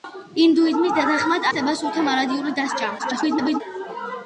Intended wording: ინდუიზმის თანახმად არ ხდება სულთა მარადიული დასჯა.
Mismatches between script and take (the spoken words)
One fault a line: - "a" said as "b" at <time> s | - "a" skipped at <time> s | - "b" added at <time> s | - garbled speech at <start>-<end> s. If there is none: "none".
- "არ" skipped at 1.4 s
- garbled speech at 3.0-3.6 s